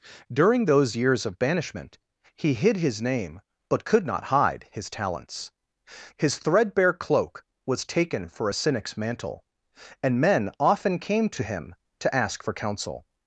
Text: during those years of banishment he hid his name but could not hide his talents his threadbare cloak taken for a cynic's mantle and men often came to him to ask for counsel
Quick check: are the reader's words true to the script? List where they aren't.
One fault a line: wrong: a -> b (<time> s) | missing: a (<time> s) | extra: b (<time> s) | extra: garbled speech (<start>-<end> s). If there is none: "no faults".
extra: was (7.6 s)